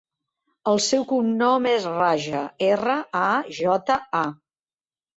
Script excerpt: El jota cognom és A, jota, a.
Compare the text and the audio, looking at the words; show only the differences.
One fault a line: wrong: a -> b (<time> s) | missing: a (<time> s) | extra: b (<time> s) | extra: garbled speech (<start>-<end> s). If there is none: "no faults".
wrong: jota -> seu (0.8 s)
extra: Raja erra (1.9 s)